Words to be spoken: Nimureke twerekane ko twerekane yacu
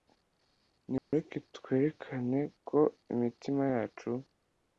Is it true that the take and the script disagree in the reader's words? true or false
true